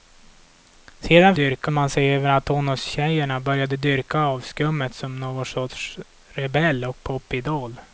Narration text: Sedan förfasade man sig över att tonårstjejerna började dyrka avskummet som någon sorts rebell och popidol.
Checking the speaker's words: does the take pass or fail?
fail